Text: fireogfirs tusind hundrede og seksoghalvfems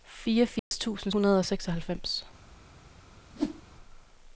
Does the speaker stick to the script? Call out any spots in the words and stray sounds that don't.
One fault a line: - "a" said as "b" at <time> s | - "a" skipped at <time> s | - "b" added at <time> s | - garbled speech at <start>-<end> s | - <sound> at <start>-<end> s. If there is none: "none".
- dropout at 0.6-0.7 s
- whoosh at 3.3-3.6 s